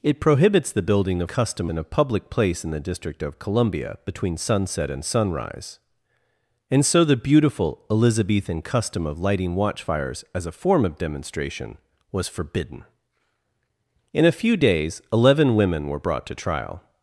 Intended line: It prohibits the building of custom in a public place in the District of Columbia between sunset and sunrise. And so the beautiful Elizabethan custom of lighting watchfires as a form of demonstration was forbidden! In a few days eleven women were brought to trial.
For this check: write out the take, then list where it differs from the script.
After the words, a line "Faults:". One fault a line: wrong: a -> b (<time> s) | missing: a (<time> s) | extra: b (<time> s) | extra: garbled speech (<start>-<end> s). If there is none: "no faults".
It prohibits the building of custom in a public place in the District of Columbia between sunset and sunrise. And so the beautiful Elizabethan custom of lighting watchfires as a form of demonstration was forbidden! In a few days eleven women were brought to trial.
Faults:
no faults